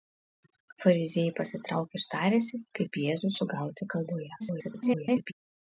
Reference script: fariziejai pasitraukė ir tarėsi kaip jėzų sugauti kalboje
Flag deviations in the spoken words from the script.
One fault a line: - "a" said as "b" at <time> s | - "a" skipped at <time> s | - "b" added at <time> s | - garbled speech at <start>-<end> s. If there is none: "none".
- garbled speech at 4.4-5.3 s